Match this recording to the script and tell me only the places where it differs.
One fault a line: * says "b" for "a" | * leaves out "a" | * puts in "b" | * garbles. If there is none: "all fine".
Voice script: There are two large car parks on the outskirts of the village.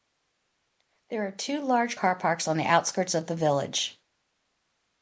all fine